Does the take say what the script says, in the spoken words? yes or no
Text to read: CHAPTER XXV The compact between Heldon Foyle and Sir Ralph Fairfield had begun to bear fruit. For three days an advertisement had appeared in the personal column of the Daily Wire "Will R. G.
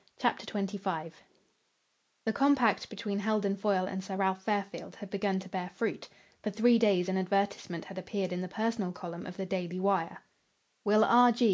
yes